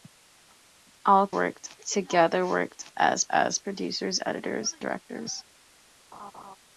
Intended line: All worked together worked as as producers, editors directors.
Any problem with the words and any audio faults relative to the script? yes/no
yes